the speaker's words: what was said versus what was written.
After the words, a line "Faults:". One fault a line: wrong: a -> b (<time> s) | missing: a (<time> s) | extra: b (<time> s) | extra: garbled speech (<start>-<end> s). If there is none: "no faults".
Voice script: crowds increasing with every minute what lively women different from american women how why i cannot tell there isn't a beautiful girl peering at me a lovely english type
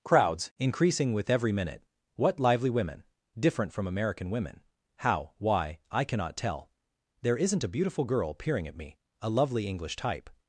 crowds increasing with every minute what lively women different from american women how why i cannot tell there isn't a beautiful girl peering at me a lovely english type
Faults:
no faults